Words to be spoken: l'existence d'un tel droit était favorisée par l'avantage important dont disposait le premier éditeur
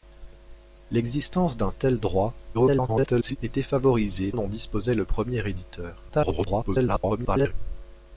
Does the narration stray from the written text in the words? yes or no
yes